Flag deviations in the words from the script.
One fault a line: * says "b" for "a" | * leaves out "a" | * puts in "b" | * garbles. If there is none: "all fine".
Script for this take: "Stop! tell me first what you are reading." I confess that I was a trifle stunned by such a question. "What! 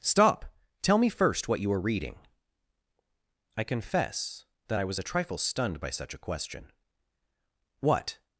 all fine